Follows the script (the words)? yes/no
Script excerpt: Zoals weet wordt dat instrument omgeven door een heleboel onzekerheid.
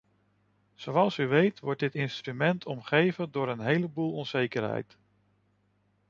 no